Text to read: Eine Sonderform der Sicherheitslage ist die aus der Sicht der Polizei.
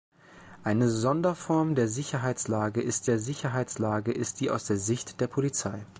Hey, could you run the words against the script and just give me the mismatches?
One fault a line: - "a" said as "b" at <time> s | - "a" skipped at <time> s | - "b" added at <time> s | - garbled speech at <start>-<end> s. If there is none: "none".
- "der Sicherheitslage ist" added at 3.1 s